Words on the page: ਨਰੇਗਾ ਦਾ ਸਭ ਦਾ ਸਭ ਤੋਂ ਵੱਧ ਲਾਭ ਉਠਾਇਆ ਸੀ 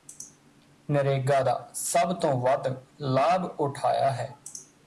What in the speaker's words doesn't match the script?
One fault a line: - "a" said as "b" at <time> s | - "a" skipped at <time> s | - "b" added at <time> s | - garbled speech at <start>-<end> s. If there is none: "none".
- "ਦਾ ਸਭ" skipped at 2.1 s
- "ਸੀ" said as "ਹੈ" at 4.1 s